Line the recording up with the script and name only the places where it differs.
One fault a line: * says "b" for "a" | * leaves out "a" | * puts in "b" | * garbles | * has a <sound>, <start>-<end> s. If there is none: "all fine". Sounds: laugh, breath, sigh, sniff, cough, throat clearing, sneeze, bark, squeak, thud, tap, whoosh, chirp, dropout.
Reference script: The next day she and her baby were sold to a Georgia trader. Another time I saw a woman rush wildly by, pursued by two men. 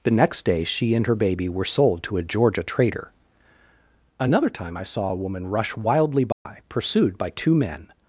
* has a dropout, 6.3-6.5 s